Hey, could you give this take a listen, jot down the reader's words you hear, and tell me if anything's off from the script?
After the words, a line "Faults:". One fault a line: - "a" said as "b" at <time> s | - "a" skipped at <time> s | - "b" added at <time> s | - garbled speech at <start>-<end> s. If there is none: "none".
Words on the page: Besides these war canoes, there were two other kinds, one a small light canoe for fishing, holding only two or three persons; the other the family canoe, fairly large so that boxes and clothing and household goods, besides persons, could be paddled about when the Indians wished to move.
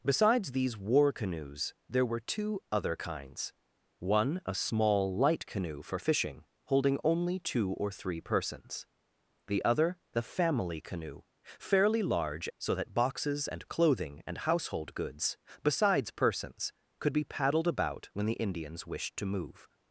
Besides these war canoes, there were two other kinds, one a small light canoe for fishing, holding only two or three persons; the other the family canoe, fairly large so that boxes and clothing and household goods, besides persons, could be paddled about when the Indians wished to move.
Faults:
none